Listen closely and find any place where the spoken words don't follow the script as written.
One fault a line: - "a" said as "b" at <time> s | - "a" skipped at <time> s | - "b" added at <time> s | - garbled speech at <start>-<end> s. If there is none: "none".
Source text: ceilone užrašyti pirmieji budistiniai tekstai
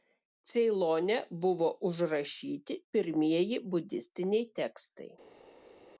- "buvo" added at 1.4 s